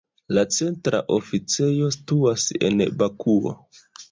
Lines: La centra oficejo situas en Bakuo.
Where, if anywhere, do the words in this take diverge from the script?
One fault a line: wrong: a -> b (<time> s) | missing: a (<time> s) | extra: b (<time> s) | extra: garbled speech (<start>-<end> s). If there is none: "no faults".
no faults